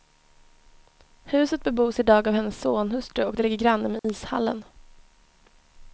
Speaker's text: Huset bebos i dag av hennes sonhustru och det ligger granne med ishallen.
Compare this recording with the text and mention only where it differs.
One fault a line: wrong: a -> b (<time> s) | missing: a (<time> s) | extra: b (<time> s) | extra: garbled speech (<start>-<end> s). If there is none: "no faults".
no faults